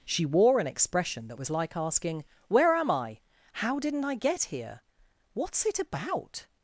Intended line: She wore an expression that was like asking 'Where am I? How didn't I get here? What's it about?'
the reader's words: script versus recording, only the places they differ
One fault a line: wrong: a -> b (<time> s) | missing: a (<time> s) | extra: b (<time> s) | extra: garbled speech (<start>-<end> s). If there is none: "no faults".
no faults